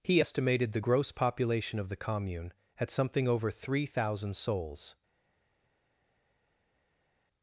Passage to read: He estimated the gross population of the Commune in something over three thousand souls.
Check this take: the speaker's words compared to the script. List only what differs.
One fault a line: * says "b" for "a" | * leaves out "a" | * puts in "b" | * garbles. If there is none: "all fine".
* says "at" for "in"